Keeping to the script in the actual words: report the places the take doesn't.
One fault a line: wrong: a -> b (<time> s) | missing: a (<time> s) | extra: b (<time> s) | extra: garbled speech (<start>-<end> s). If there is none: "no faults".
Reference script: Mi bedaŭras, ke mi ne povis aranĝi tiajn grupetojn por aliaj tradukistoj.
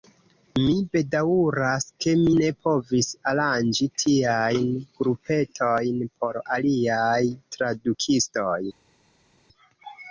no faults